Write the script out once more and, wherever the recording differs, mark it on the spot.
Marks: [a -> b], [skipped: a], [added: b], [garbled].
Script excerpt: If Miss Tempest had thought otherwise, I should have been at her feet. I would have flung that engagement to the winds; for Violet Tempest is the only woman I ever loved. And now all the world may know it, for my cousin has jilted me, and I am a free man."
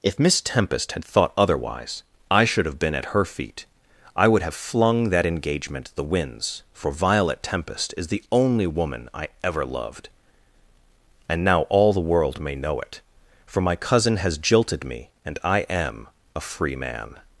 If Miss Tempest had thought otherwise, I should have been at her feet. I would have flung that engagement [skipped: to] the winds; for Violet Tempest is the only woman I ever loved. And now all the world may know it, for my cousin has jilted me, and I am a free man."